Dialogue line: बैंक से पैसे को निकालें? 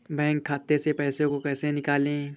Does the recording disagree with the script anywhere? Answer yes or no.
yes